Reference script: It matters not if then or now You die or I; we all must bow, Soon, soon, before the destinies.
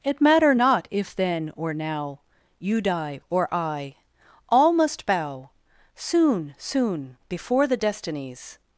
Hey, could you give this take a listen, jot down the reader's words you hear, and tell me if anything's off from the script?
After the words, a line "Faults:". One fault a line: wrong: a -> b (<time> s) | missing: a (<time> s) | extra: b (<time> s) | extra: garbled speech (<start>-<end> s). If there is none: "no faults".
It matter not if then or now You die or I; all must bow, Soon, soon, before the destinies.
Faults:
wrong: matters -> matter (0.2 s)
missing: we (3.9 s)